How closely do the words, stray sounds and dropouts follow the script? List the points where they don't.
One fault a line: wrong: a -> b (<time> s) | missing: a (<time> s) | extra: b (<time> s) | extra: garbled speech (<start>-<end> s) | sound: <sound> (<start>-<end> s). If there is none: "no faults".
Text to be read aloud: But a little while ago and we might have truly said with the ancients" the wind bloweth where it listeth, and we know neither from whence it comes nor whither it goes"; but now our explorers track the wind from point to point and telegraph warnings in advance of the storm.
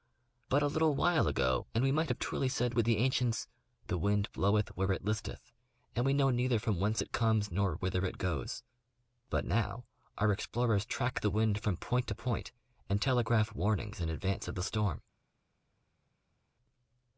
no faults